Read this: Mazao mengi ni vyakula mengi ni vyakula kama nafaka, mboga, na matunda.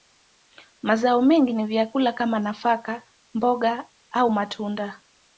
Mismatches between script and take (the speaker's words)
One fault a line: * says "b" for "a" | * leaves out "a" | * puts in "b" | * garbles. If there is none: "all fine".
* leaves out "mengi ni vyakula"
* says "au" for "na"